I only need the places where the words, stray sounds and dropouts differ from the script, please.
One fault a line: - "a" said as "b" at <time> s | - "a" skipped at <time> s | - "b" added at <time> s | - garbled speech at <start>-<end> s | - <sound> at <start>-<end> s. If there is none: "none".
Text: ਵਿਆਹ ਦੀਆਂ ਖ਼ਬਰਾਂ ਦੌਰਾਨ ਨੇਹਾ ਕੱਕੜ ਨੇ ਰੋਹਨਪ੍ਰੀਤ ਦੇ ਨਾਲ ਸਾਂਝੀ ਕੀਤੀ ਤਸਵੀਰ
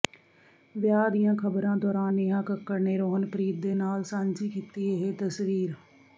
- "ਇਹ" added at 4.9 s